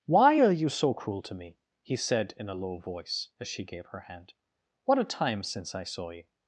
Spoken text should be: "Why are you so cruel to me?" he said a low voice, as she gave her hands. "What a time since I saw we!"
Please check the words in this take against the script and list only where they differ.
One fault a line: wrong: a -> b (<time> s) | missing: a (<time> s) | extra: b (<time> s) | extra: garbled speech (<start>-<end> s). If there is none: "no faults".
extra: in (2.4 s)
wrong: hands -> hand (4.0 s)
wrong: we -> you (6.1 s)